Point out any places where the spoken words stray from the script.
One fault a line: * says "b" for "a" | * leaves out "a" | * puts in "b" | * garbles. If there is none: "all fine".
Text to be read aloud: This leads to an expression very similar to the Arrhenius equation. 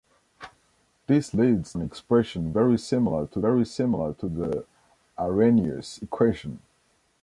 * leaves out "to"
* puts in "very similar to"